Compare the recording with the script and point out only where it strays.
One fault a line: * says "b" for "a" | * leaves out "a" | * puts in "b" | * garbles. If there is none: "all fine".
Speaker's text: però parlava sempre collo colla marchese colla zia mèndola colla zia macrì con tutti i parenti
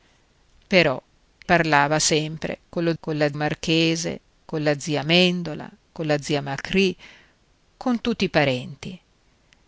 all fine